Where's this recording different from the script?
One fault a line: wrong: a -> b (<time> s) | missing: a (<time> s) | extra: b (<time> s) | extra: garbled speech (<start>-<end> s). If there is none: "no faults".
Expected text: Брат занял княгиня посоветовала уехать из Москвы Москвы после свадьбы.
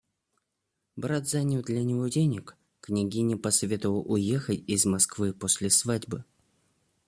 extra: для него денег (1.6 s)
missing: Москвы (5.3 s)